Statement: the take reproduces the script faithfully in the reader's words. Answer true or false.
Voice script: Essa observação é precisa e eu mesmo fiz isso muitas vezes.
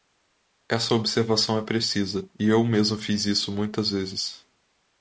true